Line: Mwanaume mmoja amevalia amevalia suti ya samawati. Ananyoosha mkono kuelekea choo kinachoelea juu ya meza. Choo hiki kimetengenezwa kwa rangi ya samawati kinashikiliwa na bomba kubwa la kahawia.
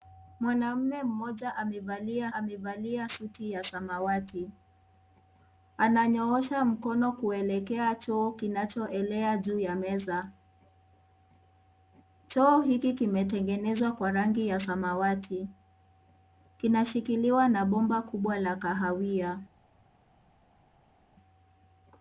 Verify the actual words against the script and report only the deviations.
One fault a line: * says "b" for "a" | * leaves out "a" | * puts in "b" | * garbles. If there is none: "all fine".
all fine